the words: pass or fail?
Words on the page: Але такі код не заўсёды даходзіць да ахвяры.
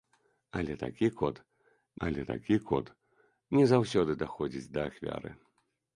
fail